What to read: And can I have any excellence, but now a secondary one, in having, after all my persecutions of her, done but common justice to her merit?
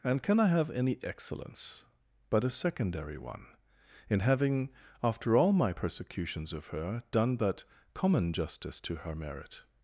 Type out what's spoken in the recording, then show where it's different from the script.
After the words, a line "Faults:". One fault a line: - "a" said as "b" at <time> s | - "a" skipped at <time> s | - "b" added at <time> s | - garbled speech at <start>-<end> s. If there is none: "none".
And can I have any excellence, but a secondary one, in having, after all my persecutions of her, done but common justice to her merit?
Faults:
- "now" skipped at 2.4 s